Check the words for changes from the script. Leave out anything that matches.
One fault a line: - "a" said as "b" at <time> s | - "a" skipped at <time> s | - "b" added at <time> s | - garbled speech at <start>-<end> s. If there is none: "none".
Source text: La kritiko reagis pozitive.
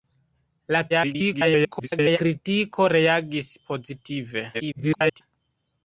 - garbled speech at 0.9-2.2 s
- garbled speech at 4.5-5.2 s